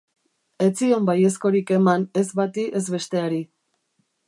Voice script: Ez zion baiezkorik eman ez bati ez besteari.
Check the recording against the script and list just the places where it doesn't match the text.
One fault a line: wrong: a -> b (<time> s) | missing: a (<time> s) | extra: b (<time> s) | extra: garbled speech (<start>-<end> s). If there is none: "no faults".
no faults